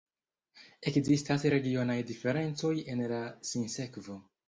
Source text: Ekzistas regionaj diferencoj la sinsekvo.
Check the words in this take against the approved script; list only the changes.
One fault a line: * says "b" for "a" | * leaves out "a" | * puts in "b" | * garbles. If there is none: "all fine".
* puts in "en"